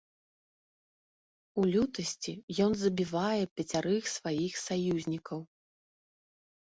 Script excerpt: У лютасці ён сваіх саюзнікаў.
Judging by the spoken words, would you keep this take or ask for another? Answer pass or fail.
fail